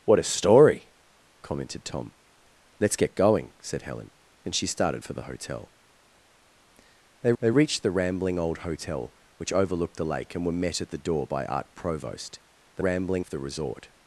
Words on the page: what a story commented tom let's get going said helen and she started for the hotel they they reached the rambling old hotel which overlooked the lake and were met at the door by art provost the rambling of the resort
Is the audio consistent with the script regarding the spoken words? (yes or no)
yes